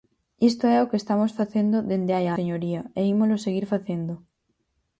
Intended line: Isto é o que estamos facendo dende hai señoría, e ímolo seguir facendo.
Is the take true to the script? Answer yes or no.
yes